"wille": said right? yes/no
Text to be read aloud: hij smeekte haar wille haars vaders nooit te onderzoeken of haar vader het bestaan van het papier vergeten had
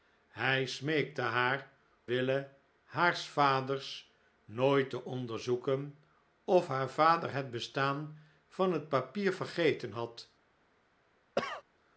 yes